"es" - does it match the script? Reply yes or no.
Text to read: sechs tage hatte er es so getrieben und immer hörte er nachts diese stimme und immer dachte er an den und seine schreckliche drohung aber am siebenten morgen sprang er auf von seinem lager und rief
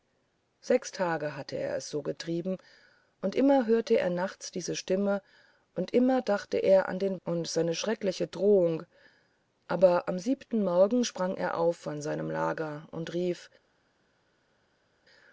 yes